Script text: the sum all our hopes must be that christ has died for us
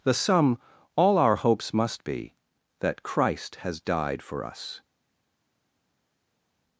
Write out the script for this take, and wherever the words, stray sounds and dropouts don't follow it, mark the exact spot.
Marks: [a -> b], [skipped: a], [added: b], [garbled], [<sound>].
the sum all our hopes must be that christ has died for us